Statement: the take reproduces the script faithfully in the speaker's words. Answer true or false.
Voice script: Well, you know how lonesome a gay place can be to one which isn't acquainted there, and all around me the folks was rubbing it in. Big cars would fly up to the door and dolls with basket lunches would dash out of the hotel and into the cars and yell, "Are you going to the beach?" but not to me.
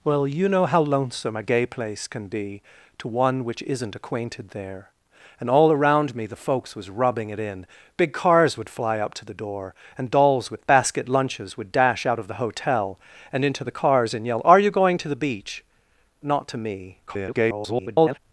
false